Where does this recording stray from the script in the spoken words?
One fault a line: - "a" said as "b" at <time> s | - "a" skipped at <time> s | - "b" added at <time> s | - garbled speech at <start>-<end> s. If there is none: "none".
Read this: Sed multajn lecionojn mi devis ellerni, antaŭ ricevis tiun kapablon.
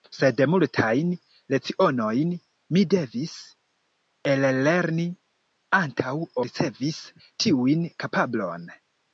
none